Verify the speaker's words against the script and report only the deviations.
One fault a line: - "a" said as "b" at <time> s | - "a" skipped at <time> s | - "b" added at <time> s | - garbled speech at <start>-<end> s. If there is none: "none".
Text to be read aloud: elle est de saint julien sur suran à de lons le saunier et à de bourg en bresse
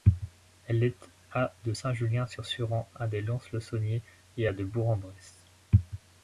- "à" added at 1.3 s